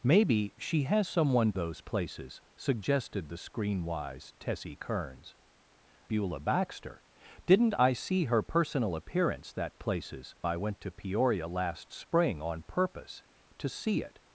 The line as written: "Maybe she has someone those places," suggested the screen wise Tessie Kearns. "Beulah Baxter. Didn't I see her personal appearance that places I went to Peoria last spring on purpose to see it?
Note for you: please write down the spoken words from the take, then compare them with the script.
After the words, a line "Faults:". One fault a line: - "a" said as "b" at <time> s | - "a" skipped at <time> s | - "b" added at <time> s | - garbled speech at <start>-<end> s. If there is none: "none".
"Maybe she has someone those places," suggested the screen wise Tessie Kearns. "Beulah Baxter. Didn't I see her personal appearance that places I went to Peoria last spring on purpose to see it?
Faults:
none